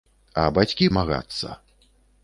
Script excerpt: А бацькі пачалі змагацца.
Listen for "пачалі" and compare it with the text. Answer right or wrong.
wrong